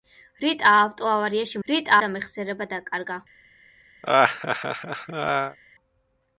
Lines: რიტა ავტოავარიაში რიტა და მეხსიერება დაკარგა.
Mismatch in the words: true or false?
false